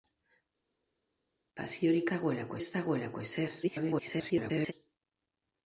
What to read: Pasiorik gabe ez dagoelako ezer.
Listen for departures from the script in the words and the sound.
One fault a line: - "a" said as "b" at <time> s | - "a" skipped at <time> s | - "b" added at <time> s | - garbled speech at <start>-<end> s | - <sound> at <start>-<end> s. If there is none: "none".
- "gabe" said as "dagoelako" at 2.1 s
- garbled speech at 3.6-4.7 s